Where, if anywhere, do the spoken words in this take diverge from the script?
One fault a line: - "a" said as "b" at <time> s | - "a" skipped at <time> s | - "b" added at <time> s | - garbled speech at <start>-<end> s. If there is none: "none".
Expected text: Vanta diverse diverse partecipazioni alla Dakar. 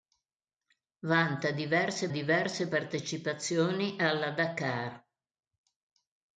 none